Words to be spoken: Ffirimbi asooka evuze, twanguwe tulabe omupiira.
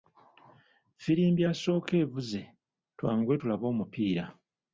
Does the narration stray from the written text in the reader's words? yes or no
no